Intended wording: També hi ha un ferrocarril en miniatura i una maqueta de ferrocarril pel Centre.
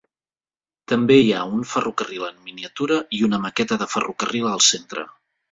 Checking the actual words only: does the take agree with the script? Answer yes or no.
no